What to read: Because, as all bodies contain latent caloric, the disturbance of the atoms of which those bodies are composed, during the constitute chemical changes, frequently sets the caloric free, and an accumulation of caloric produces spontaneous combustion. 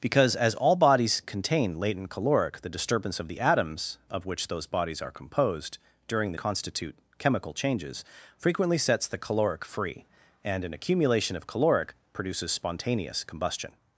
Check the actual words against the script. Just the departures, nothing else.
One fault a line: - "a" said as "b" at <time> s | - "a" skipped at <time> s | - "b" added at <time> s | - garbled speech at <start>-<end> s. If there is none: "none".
none